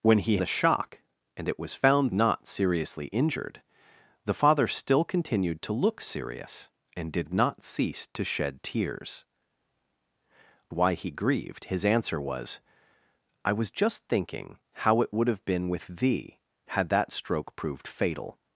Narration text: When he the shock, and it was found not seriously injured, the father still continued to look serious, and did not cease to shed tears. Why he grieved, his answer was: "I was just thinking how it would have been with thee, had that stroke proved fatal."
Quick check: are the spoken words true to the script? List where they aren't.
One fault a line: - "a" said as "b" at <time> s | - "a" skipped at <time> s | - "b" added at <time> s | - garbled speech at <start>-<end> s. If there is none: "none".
none